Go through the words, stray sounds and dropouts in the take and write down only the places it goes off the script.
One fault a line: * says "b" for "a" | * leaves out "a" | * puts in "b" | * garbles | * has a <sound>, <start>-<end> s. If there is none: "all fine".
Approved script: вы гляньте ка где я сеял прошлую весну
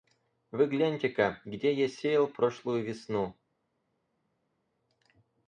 all fine